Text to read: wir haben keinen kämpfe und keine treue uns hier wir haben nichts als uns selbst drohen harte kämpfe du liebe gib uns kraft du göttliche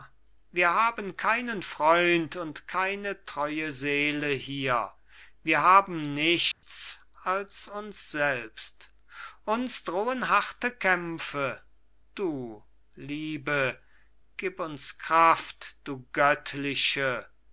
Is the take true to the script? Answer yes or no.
no